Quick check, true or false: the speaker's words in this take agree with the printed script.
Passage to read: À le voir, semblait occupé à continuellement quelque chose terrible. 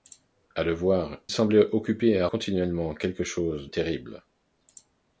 true